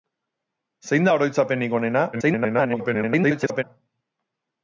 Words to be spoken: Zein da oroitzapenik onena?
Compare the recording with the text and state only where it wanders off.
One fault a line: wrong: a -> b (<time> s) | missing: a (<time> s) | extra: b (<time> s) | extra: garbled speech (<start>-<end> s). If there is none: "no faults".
extra: garbled speech (2.1-3.6 s)